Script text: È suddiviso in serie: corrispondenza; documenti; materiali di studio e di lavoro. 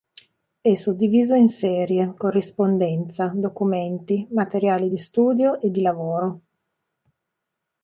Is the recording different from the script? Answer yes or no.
no